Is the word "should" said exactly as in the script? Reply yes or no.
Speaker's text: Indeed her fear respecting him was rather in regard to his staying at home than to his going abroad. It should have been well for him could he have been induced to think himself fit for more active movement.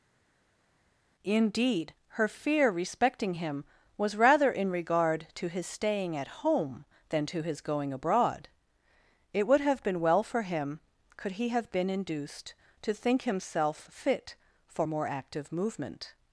no